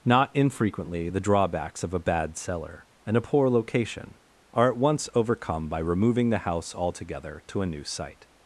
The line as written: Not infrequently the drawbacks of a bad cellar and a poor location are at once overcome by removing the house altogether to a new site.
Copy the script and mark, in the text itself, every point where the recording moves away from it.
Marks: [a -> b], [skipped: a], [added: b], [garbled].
Not infrequently the drawbacks of a bad cellar and a poor location are at once overcome by removing the house altogether to a new site.